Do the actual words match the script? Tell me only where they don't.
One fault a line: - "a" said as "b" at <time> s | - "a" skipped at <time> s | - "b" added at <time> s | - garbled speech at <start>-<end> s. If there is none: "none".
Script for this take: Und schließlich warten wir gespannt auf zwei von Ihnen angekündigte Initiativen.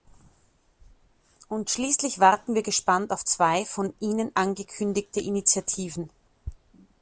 none